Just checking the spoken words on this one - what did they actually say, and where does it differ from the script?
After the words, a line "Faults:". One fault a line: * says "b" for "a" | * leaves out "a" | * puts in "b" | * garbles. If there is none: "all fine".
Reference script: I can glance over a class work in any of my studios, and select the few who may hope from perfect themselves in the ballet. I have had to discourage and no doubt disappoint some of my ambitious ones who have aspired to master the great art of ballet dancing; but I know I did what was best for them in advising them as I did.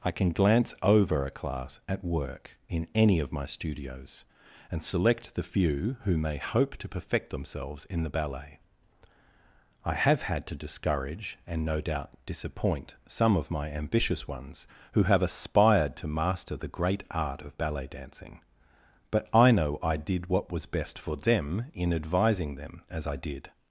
I can glance over a class at work in any of my studios, and select the few who may hope to perfect themselves in the ballet. I have had to discourage and no doubt disappoint some of my ambitious ones who have aspired to master the great art of ballet dancing; but I know I did what was best for them in advising them as I did.
Faults:
* puts in "at"
* says "to" for "from"